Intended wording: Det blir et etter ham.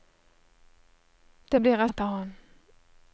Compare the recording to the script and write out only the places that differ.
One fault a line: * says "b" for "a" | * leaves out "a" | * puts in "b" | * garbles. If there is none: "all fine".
all fine